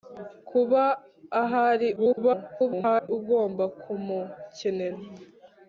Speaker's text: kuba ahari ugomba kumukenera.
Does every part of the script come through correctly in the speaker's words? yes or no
no